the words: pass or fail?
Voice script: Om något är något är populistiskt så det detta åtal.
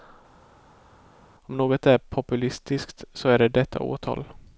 fail